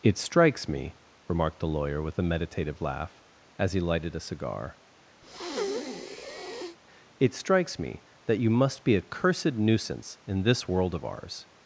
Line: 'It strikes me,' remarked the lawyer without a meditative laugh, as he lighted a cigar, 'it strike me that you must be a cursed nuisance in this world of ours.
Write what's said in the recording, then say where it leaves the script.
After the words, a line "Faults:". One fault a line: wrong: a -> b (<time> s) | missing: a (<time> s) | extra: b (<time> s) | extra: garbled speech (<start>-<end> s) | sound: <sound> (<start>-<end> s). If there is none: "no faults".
'It strikes me,' remarked the lawyer with a meditative laugh, as he lighted a cigar, 'it strikes me that you must be a cursed nuisance in this world of ours.
Faults:
wrong: without -> with (2.0 s)
sound: breath (5.2-6.8 s)
wrong: strike -> strikes (7.3 s)